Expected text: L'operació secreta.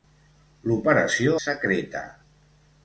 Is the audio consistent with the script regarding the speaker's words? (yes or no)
yes